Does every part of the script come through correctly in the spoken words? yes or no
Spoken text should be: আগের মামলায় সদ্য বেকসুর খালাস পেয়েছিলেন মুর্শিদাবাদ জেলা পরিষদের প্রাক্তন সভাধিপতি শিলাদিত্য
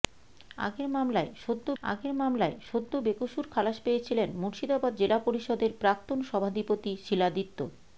no